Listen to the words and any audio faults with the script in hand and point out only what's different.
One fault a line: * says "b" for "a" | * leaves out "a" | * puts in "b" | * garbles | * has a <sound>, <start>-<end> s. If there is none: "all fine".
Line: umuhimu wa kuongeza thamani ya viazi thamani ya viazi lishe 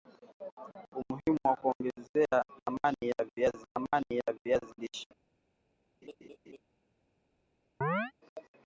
* has a laugh, 6.0-6.6 s
* has a chirp, 7.8-8.1 s